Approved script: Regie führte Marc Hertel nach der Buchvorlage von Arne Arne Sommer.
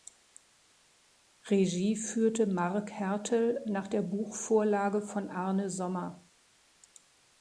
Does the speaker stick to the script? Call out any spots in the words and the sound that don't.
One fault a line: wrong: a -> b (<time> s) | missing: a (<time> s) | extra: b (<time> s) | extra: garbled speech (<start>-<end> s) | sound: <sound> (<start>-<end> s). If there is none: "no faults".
missing: Arne (5.7 s)